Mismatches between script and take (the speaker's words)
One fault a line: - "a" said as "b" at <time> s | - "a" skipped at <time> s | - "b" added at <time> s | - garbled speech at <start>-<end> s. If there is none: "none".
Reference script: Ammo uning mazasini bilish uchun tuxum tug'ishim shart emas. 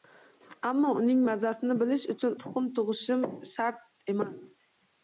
none